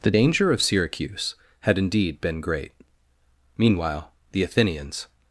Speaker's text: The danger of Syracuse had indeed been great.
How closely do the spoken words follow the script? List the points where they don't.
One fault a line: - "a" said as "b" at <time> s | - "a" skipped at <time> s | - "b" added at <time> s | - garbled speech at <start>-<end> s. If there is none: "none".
- "Meanwhile the Athenians" added at 3.6 s